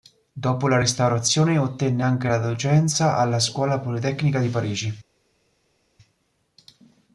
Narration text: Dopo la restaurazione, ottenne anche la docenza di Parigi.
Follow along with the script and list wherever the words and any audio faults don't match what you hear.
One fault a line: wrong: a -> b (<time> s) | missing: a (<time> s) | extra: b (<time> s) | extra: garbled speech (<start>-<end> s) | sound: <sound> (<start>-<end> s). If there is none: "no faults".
extra: alla scuola politecnica (3.2 s)